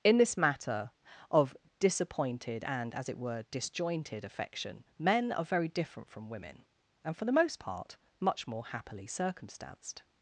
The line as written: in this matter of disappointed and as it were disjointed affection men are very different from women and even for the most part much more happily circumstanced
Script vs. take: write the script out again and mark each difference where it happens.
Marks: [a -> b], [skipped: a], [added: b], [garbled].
in this matter of disappointed and as it were disjointed affection men are very different from women and [skipped: even] for the most part much more happily circumstanced